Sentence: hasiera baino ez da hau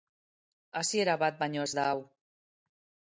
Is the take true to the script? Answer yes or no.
no